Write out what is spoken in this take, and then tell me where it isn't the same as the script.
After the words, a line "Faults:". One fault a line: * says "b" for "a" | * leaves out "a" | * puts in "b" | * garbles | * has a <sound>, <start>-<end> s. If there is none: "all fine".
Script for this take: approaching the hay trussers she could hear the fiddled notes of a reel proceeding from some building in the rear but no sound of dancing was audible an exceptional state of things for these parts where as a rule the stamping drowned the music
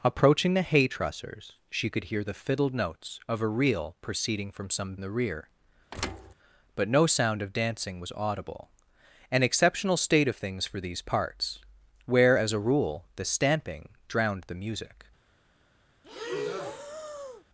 approaching the hay trussers she could hear the fiddled notes of a reel proceeding from some the rear but no sound of dancing was audible an exceptional state of things for these parts where as a rule the stamping drowned the music
Faults:
* leaves out "building in"
* has a thud, 5.9-6.3 s
* has a breath, 16.0-17.4 s